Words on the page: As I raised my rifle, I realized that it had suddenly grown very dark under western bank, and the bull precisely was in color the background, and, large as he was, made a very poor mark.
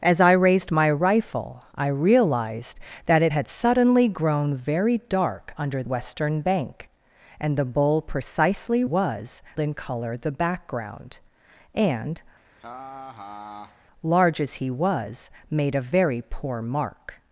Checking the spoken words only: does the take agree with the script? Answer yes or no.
yes